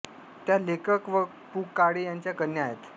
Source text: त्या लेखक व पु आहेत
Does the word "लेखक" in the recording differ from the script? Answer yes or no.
no